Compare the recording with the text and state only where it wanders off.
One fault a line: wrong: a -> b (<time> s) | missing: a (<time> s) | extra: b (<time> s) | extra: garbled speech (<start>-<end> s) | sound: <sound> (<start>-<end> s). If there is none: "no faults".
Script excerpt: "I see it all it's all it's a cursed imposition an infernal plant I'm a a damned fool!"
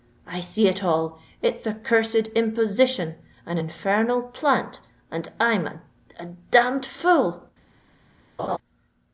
missing: all it's (1.7 s)
extra: and (5.1 s)
sound: laugh (8.4-8.6 s)